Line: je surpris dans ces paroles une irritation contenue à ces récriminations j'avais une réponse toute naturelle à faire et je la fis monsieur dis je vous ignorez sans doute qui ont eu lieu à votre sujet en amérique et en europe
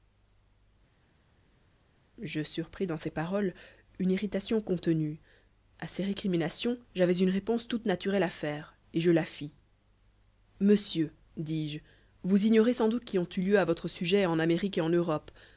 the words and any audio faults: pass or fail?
pass